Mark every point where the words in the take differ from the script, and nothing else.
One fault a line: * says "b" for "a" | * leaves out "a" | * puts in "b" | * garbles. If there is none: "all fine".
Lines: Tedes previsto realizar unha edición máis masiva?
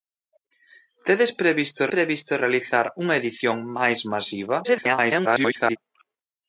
* puts in "previsto"
* garbles